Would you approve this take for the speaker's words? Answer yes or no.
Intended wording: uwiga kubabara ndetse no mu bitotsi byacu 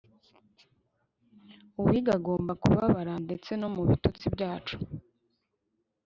no